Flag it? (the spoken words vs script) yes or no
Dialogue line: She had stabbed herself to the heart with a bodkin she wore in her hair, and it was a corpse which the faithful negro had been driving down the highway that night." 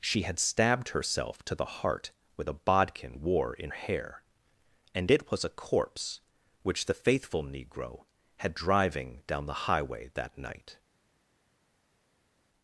yes